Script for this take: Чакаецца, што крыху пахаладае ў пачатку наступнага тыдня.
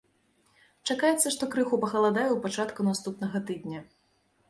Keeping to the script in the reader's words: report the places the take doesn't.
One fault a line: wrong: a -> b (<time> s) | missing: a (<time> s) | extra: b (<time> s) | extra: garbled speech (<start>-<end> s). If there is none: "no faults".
no faults